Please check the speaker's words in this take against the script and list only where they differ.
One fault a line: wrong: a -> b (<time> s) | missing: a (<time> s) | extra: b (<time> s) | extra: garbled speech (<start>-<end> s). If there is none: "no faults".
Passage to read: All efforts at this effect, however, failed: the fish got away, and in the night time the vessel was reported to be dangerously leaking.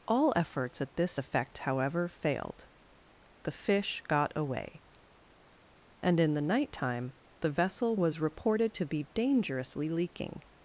no faults